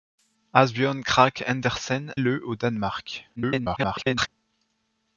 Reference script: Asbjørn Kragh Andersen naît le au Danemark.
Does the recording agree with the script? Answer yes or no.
no